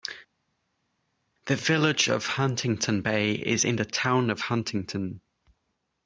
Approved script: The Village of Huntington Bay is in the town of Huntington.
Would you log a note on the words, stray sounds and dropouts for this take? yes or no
no